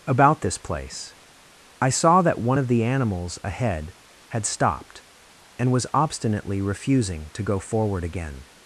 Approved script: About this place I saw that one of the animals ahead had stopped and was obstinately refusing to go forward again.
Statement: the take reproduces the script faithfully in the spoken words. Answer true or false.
true